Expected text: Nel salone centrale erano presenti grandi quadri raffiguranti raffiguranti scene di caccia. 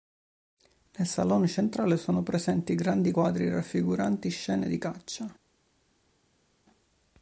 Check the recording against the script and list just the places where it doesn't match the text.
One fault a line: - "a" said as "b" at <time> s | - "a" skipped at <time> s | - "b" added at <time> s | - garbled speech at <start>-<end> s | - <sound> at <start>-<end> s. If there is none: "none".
- "erano" said as "sono" at 1.9 s
- "raffiguranti" skipped at 4.3 s